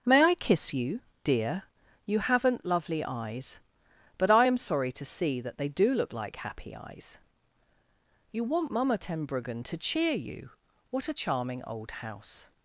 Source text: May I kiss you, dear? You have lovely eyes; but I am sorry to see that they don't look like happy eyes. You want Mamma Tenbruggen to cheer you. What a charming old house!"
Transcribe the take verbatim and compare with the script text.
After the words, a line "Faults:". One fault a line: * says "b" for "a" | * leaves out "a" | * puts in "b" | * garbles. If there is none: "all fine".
May I kiss you, dear? You haven't lovely eyes; but I am sorry to see that they do look like happy eyes. You want Mamma Tenbruggen to cheer you. What a charming old house!"
Faults:
* says "haven't" for "have"
* says "do" for "don't"